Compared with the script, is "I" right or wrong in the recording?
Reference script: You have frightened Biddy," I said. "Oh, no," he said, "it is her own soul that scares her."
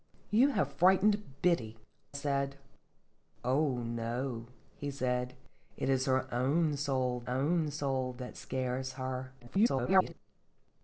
wrong